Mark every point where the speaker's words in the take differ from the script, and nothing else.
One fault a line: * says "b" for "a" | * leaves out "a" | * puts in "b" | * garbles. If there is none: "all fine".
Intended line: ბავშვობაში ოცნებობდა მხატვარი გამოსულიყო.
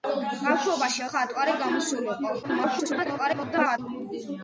* leaves out "ოცნებობდა"
* garbles